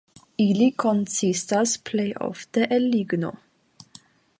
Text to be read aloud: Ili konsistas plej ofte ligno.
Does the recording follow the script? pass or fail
fail